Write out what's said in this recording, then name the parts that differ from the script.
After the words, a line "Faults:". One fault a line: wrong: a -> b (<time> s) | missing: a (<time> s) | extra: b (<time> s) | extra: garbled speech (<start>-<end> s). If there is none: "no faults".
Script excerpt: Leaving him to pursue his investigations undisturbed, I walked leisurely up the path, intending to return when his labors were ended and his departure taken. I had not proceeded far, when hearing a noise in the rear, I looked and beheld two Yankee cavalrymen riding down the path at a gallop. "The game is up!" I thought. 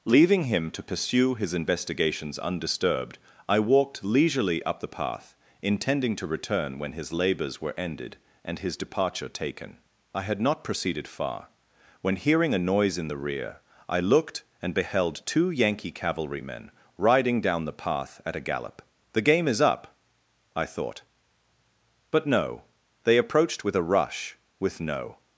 Leaving him to pursue his investigations undisturbed, I walked leisurely up the path, intending to return when his labors were ended and his departure taken. I had not proceeded far, when hearing a noise in the rear, I looked and beheld two Yankee cavalrymen riding down the path at a gallop. "The game is up!" I thought. But no, they approached with a rush, with no
Faults:
extra: But no they approached with a rush with no (22.1 s)